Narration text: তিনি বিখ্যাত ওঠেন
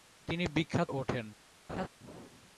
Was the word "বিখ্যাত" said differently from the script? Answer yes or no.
no